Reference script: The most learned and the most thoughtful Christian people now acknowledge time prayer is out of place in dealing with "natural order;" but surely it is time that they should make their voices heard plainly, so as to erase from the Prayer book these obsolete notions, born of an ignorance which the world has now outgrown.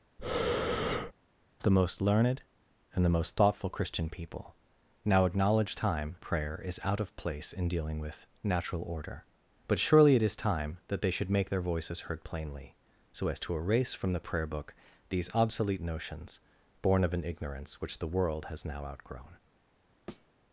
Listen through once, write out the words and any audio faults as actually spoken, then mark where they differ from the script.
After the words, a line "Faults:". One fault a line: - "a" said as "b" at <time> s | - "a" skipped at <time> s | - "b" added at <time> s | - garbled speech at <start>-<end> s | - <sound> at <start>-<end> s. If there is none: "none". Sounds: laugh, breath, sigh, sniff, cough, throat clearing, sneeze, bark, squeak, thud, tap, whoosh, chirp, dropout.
The most learned and the most thoughtful Christian people now acknowledge time prayer is out of place in dealing with "natural order;" but surely it is time that they should make their voices heard plainly, so as to erase from the Prayer book these obsolete notions, born of an ignorance which the world has now outgrown.
Faults:
- breath at 0.2-1.1 s
- thud at 20.1-20.3 s